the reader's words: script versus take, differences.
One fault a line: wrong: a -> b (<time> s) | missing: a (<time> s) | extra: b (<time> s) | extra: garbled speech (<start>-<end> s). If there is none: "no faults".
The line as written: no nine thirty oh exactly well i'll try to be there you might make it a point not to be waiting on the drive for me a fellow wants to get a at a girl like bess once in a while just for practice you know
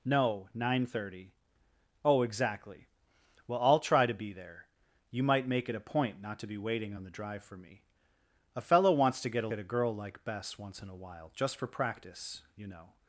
no faults